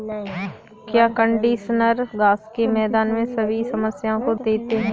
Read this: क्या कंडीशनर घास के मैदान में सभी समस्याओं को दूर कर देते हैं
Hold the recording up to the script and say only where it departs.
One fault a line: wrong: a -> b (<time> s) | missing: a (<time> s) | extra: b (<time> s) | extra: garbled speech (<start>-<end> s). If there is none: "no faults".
missing: दूर कर (4.3 s)